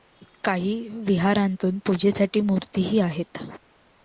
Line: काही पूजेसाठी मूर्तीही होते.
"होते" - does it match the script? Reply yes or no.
no